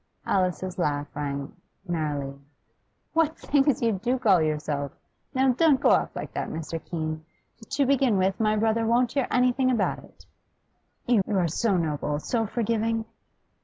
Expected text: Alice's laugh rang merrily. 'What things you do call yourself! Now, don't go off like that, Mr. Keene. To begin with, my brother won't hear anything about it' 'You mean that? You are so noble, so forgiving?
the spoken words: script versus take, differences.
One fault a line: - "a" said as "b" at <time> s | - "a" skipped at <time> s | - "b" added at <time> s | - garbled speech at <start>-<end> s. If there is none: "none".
- "mean that" skipped at 11.2 s